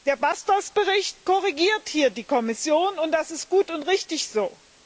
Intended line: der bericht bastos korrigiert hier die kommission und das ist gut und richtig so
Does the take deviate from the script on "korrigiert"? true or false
false